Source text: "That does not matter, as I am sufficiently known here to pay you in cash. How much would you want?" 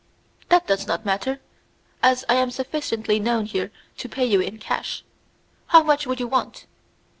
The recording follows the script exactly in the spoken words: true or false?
true